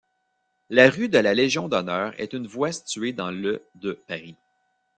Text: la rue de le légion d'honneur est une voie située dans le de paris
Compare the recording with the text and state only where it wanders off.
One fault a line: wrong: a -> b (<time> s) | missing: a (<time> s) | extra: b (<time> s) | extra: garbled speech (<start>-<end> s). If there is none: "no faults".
wrong: le -> la (1.2 s)